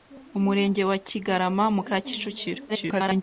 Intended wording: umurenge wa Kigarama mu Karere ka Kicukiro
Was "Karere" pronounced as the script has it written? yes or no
no